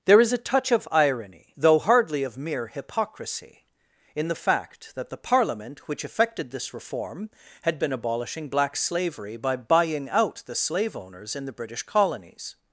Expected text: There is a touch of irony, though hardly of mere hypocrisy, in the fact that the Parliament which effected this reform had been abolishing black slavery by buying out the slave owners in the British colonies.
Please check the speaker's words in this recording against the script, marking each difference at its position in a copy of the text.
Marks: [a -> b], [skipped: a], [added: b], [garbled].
There is a touch of irony, though hardly of mere hypocrisy, in the fact that the Parliament which effected this reform had been abolishing black slavery by buying out the slave owners in the British colonies.